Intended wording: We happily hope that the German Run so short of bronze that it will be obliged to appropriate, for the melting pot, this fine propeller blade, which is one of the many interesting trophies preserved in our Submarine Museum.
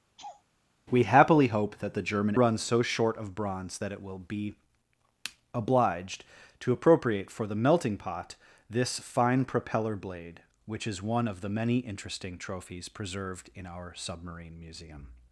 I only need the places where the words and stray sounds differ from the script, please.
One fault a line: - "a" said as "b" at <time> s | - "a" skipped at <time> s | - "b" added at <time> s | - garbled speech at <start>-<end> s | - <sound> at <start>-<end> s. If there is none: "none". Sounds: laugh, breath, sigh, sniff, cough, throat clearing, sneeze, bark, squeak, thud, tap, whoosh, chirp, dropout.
- laugh at 0.2-0.4 s